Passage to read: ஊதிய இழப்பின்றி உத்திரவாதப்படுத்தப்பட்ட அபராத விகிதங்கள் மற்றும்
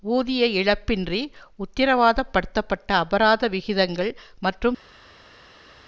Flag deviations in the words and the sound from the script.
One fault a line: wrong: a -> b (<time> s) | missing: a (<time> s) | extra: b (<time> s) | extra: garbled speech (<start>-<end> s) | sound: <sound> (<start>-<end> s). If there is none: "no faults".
no faults